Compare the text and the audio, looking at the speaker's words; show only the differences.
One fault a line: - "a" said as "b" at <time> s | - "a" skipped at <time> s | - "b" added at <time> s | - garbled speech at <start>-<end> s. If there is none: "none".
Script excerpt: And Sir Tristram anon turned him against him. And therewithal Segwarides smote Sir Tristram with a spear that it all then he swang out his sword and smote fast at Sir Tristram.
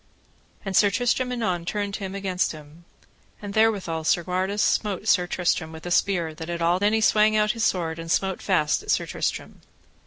none